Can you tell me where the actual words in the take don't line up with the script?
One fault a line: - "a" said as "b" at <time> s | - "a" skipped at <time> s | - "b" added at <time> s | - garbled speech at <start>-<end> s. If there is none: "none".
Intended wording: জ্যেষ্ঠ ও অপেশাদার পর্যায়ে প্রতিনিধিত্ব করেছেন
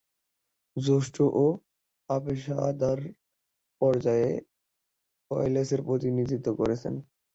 - "ওয়েলসের" added at 5.3 s